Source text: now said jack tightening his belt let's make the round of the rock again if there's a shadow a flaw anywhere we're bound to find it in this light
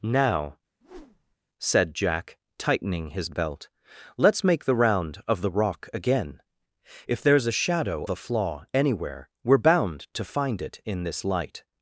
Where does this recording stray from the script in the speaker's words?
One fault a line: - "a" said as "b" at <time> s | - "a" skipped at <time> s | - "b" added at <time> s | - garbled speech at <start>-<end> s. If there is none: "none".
none